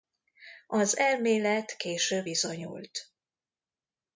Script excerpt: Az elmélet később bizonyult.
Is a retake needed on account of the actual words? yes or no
no